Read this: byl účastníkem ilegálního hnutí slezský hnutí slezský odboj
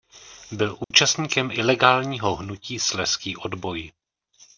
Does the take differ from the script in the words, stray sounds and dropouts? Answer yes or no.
yes